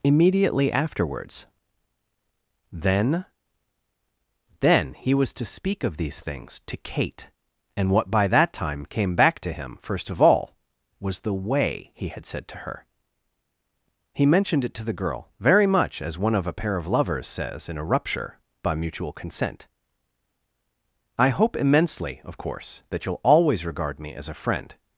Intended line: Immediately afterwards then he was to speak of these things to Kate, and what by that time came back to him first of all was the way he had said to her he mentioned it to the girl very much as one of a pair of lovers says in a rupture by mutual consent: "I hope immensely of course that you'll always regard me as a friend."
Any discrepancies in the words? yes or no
yes